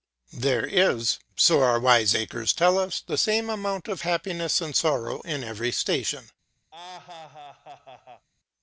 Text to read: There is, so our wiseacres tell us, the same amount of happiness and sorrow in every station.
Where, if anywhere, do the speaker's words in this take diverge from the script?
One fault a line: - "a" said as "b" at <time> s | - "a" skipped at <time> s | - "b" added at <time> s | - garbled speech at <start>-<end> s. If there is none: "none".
none